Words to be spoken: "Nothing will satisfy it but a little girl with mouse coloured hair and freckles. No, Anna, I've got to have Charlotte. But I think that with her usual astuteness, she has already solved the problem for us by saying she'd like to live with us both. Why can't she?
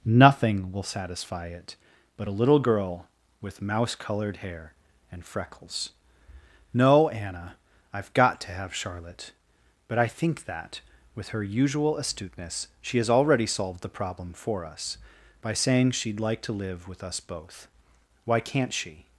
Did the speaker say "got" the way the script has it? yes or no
yes